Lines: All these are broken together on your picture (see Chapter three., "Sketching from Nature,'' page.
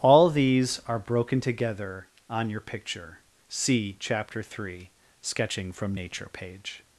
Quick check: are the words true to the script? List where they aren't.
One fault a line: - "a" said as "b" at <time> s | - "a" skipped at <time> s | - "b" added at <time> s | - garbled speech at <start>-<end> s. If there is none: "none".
none